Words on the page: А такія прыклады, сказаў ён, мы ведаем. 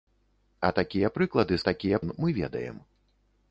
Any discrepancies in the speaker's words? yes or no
yes